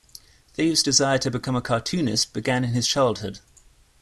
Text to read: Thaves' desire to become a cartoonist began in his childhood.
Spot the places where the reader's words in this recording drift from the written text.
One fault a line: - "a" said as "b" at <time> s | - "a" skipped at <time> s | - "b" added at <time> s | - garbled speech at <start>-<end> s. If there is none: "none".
none